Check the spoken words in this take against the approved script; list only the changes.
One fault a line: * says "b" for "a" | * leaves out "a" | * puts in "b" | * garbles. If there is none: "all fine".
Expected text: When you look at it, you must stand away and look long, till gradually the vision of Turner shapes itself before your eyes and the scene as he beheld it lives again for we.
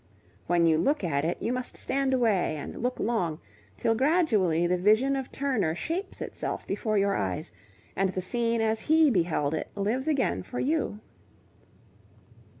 * says "you" for "we"